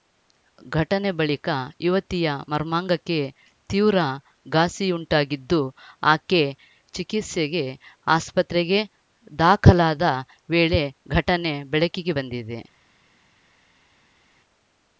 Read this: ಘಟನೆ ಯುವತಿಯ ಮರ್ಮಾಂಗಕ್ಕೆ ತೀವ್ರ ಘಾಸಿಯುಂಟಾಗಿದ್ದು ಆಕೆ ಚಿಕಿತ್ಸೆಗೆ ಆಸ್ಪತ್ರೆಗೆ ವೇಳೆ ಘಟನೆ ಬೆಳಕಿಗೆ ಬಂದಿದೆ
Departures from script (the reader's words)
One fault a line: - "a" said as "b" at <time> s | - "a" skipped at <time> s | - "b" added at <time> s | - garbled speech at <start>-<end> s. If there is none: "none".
- "ಬಳಿಕ" added at 1.2 s
- "ದಾಖಲಾದ" added at 9.4 s